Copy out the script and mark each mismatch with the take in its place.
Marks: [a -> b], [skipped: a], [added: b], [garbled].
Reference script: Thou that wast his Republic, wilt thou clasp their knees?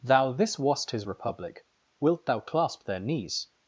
Thou [that -> this] wast his Republic, wilt thou clasp their knees?